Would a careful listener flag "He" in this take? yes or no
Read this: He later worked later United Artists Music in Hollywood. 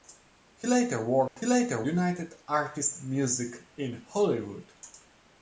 no